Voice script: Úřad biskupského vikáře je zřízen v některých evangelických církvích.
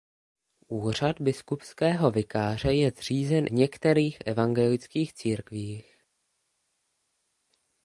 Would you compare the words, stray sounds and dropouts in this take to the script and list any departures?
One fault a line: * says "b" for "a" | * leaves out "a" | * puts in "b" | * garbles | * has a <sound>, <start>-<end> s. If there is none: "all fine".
all fine